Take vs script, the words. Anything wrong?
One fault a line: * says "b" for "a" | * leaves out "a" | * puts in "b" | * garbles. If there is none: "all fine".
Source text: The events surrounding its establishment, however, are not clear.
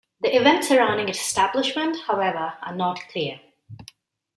all fine